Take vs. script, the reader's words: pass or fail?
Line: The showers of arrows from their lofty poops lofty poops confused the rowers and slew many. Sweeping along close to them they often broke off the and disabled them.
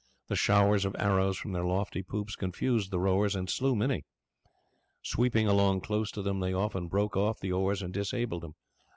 fail